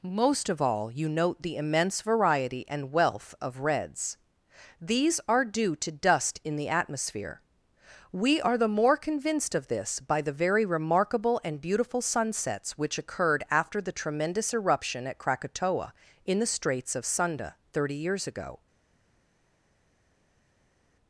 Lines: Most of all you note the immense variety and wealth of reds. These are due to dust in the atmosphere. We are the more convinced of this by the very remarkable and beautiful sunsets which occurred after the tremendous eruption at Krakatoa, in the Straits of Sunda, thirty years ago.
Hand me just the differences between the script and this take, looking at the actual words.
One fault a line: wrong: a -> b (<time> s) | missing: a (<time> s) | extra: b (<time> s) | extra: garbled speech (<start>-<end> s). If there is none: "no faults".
no faults